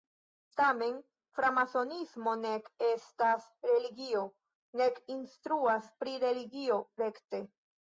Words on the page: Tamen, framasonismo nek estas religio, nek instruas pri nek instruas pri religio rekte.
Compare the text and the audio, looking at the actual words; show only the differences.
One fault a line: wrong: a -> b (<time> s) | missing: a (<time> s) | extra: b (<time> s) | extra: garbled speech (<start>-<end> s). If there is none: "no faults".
missing: nek instruas pri (6.2 s)